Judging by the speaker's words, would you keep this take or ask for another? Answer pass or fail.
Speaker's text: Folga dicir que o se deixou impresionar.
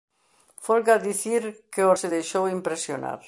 pass